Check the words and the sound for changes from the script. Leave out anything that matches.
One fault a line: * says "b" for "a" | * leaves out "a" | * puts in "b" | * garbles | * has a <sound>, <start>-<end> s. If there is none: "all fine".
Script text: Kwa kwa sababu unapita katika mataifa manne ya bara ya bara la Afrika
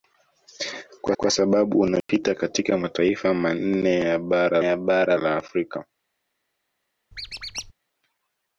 * has a dropout, 2.0-2.1 s
* has a squeak, 7.1-7.7 s